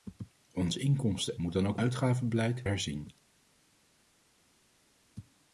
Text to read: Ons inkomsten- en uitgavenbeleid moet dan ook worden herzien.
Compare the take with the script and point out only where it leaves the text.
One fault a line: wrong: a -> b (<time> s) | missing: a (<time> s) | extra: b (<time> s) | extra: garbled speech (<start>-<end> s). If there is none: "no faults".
missing: en uitgavenbeleid (1.4 s)
wrong: worden -> uitgavenbeleid (1.8 s)